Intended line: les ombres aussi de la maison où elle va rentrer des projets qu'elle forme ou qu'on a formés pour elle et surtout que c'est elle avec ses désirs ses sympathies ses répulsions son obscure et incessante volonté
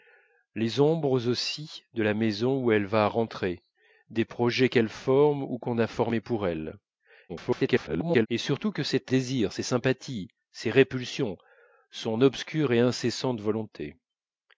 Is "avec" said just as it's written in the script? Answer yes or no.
no